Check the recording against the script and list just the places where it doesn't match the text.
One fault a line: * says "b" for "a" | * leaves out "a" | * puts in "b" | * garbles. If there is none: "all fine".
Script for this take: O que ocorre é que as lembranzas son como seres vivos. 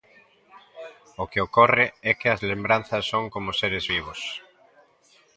all fine